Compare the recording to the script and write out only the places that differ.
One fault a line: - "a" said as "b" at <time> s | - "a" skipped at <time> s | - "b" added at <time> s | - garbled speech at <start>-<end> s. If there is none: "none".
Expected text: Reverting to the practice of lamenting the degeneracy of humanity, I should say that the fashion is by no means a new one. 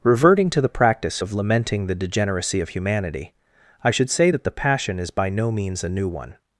- "fashion" said as "passion" at 4.5 s